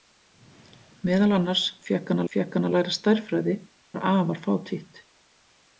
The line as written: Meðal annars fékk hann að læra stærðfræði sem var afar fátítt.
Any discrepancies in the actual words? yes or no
yes